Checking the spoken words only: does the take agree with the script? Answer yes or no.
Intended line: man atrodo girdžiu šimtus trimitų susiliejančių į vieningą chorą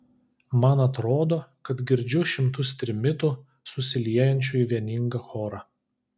no